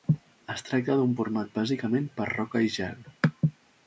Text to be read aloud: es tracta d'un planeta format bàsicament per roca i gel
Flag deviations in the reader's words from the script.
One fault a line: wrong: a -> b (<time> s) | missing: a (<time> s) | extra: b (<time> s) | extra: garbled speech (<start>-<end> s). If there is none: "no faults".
missing: planeta (1.1 s)